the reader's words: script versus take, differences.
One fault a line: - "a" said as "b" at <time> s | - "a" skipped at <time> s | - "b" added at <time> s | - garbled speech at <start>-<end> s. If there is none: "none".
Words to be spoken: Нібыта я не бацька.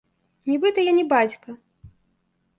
none